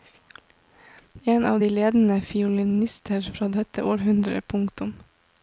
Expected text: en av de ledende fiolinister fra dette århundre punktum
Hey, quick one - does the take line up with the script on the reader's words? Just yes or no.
yes